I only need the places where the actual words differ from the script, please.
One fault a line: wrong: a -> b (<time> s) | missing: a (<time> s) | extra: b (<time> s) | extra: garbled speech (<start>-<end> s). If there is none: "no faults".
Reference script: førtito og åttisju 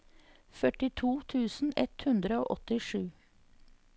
extra: tusen ett hundre (1.3 s)